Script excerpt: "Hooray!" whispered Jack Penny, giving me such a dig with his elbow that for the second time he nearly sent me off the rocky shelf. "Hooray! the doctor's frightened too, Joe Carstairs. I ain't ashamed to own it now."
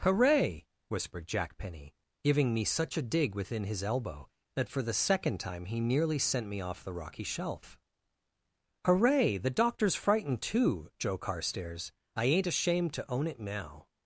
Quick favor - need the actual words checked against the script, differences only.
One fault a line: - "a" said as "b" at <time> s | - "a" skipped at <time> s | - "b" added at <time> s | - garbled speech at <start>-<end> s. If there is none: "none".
- "with" said as "within" at 3.4 s